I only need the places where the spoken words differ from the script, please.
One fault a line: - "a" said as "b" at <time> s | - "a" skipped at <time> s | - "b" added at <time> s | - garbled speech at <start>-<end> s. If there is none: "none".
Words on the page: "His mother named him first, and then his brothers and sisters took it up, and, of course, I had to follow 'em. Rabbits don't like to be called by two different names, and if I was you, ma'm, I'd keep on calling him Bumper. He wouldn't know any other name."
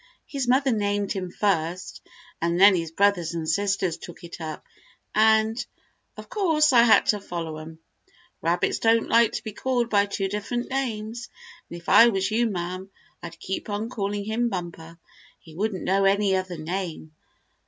none